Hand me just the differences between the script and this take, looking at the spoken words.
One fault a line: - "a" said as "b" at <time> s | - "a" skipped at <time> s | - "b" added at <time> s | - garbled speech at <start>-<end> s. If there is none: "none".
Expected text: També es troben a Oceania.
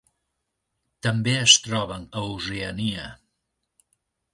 none